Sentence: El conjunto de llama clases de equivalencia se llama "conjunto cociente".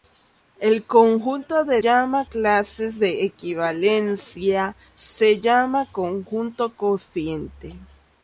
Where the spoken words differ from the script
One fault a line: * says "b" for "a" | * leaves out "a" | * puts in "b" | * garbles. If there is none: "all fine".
all fine